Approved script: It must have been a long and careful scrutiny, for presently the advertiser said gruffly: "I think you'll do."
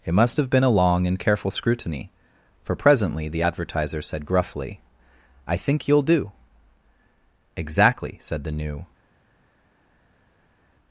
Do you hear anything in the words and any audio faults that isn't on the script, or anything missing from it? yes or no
yes